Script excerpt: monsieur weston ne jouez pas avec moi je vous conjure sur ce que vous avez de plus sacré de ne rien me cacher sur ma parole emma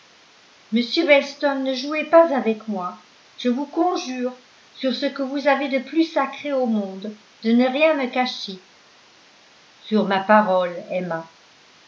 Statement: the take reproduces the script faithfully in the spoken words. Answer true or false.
false